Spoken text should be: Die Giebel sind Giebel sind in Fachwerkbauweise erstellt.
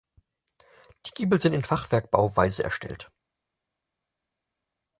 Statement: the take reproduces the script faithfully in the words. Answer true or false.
false